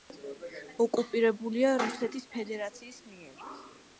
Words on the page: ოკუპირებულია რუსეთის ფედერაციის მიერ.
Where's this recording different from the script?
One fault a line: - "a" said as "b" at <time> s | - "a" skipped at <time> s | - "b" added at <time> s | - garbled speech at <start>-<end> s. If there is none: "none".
none